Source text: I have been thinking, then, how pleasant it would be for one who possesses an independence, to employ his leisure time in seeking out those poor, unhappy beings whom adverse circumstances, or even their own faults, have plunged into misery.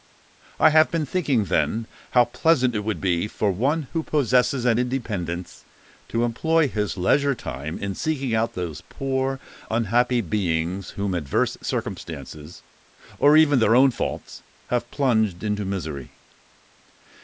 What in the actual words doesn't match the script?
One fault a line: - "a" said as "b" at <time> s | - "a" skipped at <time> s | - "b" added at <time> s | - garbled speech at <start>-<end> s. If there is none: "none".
none